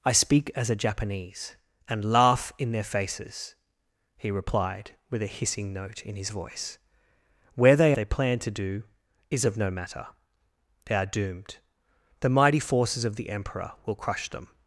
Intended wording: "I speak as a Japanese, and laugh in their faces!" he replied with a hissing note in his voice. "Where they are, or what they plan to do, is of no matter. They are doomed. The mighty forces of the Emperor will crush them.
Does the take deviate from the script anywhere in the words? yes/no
yes